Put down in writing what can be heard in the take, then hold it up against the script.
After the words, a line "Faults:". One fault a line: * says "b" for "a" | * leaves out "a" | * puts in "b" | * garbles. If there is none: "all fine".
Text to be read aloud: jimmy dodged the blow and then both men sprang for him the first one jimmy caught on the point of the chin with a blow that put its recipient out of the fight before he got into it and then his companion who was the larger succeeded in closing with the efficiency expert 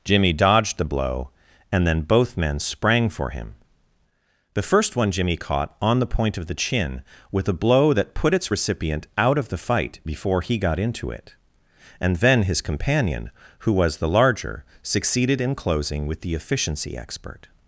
jimmy dodged the blow and then both men sprang for him the first one jimmy caught on the point of the chin with a blow that put its recipient out of the fight before he got into it and then his companion who was the larger succeeded in closing with the efficiency expert
Faults:
all fine